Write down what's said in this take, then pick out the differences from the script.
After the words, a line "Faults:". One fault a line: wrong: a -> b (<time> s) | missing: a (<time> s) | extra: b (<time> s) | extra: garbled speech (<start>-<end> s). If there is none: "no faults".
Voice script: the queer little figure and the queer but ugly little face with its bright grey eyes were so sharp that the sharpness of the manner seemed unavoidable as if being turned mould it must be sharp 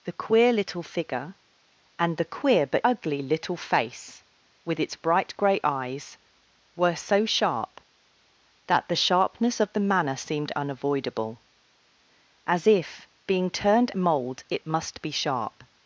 the queer little figure and the queer but ugly little face with its bright grey eyes were so sharp that the sharpness of the manner seemed unavoidable as if being turned mould it must be sharp
Faults:
no faults